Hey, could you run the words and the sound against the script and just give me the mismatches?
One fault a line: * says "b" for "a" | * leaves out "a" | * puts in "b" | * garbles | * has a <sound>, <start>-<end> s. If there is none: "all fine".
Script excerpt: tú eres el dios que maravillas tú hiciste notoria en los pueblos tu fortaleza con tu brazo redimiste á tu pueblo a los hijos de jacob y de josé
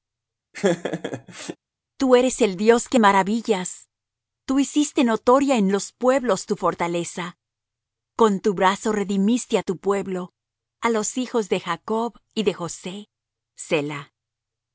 * has a laugh, 0.5-1.6 s